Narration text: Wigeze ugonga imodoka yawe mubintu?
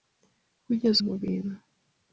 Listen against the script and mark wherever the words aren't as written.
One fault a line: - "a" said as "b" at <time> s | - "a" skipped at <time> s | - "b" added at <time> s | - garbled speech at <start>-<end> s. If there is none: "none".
- "ugonga imodoka yawe" skipped at 1.0 s